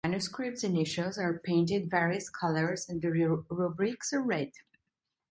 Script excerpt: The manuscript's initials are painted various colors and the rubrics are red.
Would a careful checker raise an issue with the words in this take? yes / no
no